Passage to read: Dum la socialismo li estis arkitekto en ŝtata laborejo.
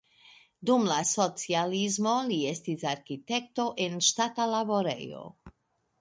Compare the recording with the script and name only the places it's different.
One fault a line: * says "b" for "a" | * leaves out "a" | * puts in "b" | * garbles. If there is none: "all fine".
all fine